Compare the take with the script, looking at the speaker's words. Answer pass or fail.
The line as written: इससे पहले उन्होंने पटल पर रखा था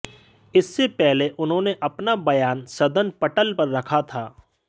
fail